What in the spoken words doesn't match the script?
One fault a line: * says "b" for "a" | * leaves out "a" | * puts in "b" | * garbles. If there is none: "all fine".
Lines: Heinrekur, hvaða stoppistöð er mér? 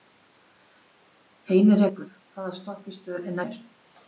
all fine